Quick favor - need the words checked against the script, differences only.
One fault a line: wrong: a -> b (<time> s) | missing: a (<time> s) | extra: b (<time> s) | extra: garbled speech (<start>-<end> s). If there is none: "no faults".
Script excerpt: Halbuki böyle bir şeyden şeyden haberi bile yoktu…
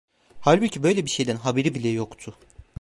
missing: şeyden (1.4 s)